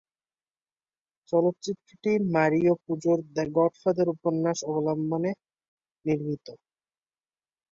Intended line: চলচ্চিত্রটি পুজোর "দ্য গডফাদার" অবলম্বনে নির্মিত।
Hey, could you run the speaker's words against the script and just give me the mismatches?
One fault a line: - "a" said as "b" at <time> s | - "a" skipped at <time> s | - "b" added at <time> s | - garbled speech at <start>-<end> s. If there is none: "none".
- "মারিও" added at 2.3 s
- "উপন্যাস" added at 4.2 s